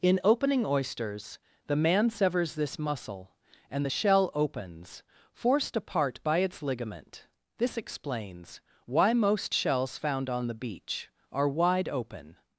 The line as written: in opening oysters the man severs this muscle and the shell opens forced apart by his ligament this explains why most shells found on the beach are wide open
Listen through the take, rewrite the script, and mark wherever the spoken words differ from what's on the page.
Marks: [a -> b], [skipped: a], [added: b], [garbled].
in opening oysters the man severs this muscle and the shell opens forced apart by [his -> its] ligament this explains why most shells found on the beach are wide open